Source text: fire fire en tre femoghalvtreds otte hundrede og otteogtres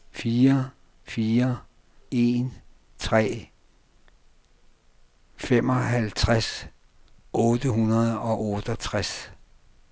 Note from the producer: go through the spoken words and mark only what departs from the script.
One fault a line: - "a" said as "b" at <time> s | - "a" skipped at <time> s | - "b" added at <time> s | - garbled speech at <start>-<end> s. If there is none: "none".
none